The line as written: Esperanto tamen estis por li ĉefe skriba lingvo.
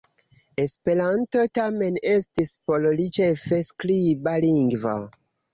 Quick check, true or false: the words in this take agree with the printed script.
true